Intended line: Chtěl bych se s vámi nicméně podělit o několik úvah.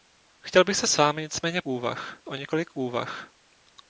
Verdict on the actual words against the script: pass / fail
fail